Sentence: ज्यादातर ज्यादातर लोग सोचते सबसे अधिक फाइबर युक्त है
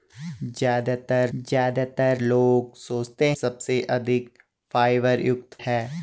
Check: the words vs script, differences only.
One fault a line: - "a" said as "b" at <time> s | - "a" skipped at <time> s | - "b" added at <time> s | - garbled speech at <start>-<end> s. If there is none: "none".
none